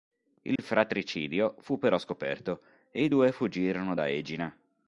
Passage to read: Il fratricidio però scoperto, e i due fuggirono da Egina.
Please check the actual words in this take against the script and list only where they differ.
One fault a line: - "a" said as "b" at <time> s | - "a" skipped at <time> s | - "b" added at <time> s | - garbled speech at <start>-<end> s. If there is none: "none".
- "fu" added at 1.6 s